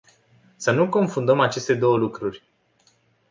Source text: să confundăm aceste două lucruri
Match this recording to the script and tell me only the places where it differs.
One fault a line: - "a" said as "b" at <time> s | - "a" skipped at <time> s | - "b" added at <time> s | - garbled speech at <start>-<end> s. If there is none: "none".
- "nu" added at 0.7 s